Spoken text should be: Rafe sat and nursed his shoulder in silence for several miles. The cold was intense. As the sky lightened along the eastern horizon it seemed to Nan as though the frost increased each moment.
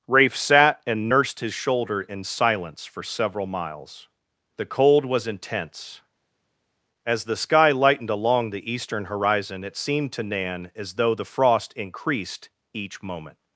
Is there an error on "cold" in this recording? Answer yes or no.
no